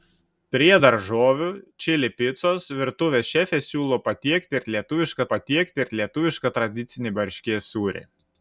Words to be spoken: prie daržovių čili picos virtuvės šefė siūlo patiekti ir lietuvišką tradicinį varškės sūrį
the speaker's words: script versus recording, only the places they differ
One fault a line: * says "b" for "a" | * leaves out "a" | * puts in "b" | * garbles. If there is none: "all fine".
* puts in "patiekti ir lietuvišką"